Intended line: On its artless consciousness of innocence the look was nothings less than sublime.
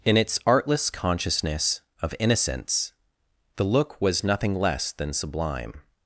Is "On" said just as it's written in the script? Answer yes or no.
no